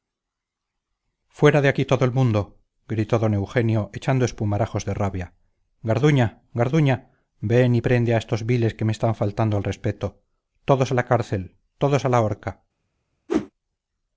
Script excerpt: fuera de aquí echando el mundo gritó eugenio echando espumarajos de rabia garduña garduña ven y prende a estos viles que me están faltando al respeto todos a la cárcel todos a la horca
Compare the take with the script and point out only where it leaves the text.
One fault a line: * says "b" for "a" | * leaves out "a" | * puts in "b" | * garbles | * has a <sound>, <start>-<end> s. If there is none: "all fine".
* says "todo" for "echando"
* puts in "don"
* has a whoosh, 13.3-13.5 s